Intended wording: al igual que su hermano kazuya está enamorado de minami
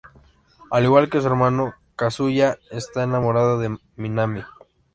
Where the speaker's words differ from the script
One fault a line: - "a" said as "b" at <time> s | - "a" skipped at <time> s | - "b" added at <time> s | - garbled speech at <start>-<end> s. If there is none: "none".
none